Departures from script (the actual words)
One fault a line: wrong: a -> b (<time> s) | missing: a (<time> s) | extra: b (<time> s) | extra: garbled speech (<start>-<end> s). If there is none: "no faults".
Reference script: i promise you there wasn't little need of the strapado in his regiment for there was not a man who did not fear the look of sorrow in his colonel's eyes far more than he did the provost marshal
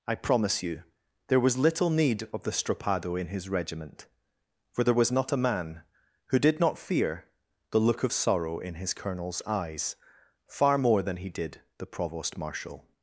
wrong: wasn't -> was (1.4 s)